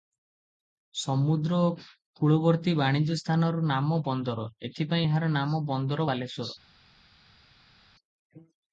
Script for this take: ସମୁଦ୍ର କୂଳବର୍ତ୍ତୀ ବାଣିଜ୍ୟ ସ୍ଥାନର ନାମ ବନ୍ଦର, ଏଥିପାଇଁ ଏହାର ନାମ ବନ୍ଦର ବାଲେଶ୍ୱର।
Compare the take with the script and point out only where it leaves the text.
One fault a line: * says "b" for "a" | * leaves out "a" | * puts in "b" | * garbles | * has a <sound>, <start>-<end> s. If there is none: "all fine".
all fine